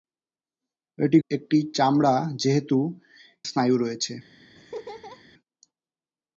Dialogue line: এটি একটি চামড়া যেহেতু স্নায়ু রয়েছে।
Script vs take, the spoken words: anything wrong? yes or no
no